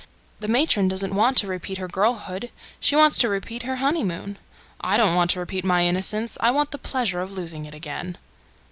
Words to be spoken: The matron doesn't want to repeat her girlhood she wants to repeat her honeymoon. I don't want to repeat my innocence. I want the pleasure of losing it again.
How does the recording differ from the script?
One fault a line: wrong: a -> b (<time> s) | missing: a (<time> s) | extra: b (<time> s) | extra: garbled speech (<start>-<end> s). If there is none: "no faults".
no faults